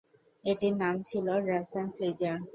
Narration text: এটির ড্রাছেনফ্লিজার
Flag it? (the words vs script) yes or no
yes